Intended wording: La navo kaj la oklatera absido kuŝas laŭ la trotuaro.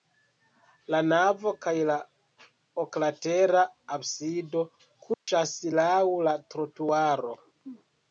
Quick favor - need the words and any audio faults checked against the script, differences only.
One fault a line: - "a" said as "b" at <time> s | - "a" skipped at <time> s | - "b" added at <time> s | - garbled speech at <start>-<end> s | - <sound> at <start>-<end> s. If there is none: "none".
- dropout at 5.1-5.3 s